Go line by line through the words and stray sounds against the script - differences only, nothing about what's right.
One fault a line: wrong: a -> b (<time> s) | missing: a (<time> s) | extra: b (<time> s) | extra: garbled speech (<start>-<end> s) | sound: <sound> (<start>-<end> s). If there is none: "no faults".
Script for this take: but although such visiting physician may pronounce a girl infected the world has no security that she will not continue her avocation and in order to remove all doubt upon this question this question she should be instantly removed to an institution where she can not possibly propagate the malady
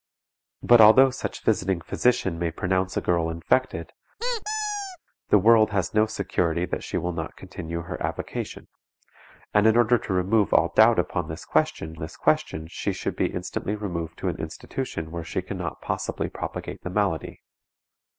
sound: squeak (4.2-5.0 s)